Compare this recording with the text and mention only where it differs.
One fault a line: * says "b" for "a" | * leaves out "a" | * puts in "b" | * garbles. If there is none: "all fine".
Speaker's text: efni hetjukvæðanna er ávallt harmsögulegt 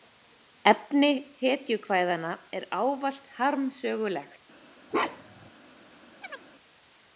all fine